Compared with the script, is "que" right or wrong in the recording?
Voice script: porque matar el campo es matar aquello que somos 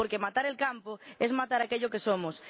right